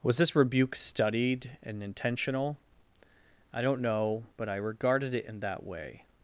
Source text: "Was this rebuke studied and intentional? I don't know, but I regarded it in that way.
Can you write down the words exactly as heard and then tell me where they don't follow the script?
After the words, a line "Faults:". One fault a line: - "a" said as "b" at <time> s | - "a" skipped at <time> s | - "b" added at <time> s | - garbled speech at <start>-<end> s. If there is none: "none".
"Was this rebuke studied and intentional? I don't know, but I regarded it in that way.
Faults:
none